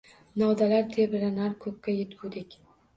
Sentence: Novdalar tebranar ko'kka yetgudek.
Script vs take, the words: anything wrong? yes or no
no